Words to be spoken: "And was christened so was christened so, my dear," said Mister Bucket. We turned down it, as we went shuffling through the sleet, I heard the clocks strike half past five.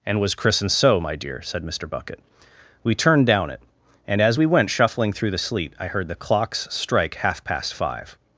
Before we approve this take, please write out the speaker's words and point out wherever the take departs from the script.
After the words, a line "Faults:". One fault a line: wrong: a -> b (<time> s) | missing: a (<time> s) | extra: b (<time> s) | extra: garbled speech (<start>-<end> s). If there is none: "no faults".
"And was christened so, my dear," said Mister Bucket. We turned down it, and as we went shuffling through the sleet, I heard the clocks strike half past five.
Faults:
missing: was christened so (1.0 s)
extra: and (4.1 s)